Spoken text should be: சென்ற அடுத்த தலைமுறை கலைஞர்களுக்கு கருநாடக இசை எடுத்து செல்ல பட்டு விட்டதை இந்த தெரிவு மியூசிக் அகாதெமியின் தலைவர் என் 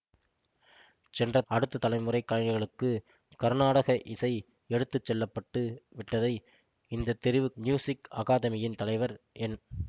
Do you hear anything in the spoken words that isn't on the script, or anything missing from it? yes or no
no